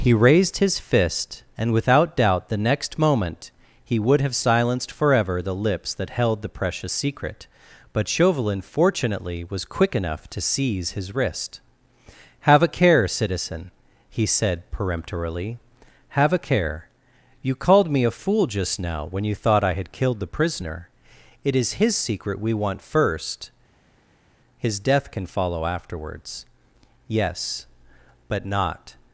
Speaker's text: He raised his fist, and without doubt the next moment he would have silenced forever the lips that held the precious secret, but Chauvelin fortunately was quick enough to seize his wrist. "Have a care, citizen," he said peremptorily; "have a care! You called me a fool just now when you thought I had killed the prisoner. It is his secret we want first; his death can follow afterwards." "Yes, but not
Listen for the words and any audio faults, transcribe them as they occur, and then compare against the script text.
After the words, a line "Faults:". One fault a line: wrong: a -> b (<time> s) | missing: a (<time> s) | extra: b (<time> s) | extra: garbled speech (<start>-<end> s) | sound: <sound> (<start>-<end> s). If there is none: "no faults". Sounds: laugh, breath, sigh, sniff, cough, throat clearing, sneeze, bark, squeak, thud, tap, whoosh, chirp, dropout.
He raised his fist, and without doubt the next moment he would have silenced forever the lips that held the precious secret, but Chauvelin fortunately was quick enough to seize his wrist. "Have a care, citizen," he said peremptorily; "have a care! You called me a fool just now when you thought I had killed the prisoner. It is his secret we want first; his death can follow afterwards." "Yes, but not
Faults:
no faults